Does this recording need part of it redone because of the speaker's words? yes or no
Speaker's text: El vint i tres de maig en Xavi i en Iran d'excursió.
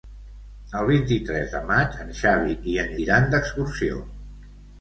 no